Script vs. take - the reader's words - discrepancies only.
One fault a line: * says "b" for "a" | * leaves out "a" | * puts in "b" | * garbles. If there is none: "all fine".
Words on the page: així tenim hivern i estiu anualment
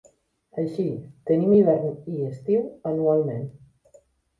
all fine